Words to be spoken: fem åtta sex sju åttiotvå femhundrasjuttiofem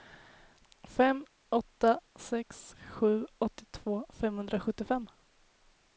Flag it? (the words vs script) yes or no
no